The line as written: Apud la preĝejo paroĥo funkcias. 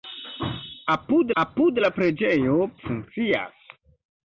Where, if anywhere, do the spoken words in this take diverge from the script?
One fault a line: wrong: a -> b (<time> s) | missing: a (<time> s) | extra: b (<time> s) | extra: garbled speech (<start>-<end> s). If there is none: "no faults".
extra: apud (1.4 s)
missing: paroĥo (2.6 s)